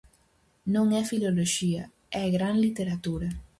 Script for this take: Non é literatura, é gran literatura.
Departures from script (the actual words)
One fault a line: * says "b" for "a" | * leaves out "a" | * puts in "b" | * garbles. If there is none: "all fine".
* says "filoloxía" for "literatura"